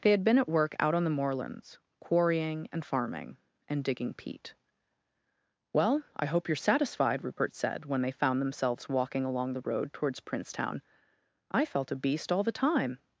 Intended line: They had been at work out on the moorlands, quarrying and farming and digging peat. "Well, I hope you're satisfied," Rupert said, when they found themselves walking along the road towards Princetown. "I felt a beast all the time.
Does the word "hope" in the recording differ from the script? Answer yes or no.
no